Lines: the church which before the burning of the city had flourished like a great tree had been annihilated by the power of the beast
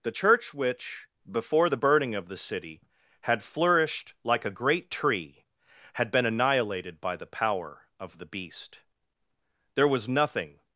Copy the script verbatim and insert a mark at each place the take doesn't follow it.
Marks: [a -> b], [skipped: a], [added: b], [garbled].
the church which before the burning of the city had flourished like a great tree had been annihilated by the power of the beast [added: there was nothing]